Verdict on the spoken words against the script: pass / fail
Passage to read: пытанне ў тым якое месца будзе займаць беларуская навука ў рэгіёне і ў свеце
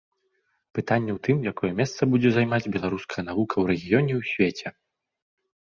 pass